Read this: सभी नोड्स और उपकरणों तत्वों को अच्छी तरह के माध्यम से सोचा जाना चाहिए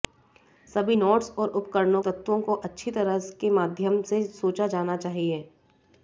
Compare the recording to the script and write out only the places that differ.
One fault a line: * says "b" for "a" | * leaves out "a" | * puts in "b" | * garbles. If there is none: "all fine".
all fine